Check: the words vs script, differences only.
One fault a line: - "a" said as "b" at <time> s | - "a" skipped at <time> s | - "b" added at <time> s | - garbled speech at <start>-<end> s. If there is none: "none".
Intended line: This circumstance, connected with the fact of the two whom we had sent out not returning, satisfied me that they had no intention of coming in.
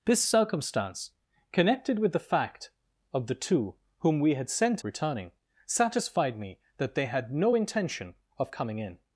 - "out not" skipped at 4.8 s